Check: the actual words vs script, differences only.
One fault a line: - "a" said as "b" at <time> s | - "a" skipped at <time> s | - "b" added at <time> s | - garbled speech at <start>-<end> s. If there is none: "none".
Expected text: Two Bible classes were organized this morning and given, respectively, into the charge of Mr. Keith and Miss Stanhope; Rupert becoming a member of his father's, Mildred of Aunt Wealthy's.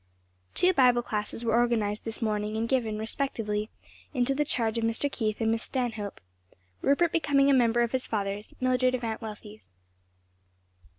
none